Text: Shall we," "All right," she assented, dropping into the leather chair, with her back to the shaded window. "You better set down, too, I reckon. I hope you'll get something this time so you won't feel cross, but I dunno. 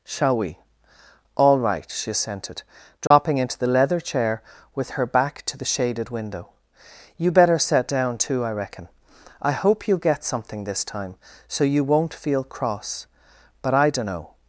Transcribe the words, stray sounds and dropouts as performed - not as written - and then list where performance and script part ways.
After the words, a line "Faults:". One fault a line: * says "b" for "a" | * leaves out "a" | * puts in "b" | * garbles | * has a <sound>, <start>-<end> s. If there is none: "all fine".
Shall we," "All right," she assented, dropping into the leather chair, with her back to the shaded window. "You better set down, too, I reckon. I hope you'll get something this time so you won't feel cross, but I dunno.
Faults:
* has a dropout, 3.1-3.1 s